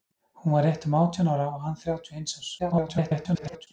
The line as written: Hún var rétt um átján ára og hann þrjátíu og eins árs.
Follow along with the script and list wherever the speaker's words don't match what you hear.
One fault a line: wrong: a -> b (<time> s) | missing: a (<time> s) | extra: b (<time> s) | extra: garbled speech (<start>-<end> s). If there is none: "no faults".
extra: garbled speech (2.6-3.7 s)